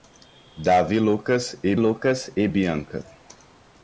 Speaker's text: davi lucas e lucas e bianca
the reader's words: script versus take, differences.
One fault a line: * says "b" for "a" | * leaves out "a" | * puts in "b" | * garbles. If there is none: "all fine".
all fine